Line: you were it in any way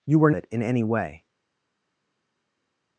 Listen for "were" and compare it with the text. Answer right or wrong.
right